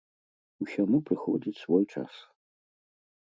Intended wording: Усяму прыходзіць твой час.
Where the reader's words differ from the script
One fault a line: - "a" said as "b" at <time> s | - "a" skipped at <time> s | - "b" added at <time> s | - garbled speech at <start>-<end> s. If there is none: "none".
- "твой" said as "свой" at 1.6 s